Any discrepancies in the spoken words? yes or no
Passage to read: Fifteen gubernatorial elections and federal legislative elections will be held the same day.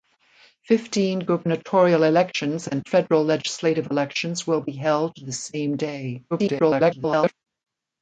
yes